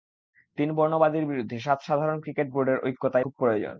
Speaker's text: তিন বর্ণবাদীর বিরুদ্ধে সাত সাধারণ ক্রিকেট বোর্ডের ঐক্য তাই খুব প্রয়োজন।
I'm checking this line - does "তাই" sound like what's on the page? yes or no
yes